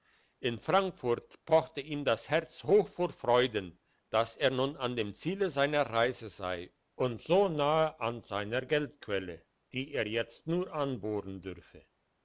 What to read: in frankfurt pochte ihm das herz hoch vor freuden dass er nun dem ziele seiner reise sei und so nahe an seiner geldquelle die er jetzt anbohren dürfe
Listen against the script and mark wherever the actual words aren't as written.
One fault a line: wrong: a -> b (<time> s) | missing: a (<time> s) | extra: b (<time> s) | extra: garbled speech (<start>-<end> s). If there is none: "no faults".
extra: an (4.8 s)
extra: nur (10.5 s)